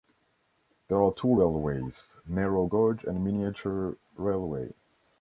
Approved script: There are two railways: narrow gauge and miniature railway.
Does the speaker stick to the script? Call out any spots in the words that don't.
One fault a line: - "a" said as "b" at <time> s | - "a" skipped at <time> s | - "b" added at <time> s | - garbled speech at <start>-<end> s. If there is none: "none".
none